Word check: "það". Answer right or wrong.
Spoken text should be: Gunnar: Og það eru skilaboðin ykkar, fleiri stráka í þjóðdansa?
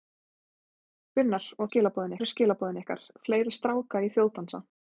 wrong